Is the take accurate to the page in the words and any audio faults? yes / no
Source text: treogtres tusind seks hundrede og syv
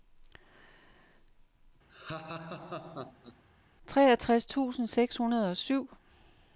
no